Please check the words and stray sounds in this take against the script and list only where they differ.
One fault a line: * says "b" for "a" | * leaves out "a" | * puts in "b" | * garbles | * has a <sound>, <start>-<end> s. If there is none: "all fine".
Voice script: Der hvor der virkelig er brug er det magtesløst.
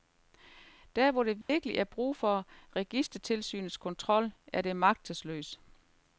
* has a dropout, 1.4-1.5 s
* puts in "for registertilsynets kontrol"